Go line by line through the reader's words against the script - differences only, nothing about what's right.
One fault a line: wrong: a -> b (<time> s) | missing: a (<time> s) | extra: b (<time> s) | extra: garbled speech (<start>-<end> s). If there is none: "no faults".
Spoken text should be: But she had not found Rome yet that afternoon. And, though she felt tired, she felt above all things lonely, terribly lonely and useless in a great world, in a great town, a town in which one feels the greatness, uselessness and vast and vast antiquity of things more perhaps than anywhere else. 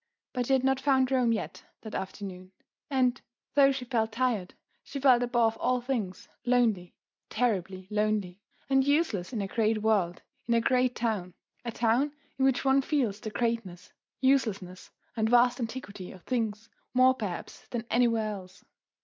missing: and vast (15.6 s)